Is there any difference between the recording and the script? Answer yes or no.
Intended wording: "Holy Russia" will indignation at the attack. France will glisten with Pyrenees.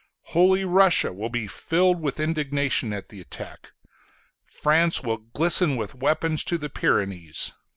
yes